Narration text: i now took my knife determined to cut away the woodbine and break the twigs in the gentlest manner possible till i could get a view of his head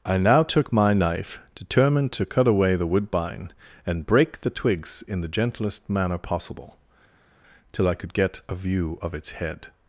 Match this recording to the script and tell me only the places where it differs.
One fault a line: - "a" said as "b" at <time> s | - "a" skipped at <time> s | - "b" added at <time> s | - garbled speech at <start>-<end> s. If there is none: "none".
- "his" said as "its" at 9.1 s